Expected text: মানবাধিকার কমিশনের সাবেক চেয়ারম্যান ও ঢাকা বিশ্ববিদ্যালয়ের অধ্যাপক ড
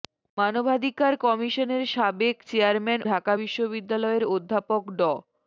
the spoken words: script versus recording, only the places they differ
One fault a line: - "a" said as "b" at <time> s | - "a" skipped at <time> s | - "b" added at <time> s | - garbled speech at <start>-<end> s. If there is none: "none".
- "ও" skipped at 3.0 s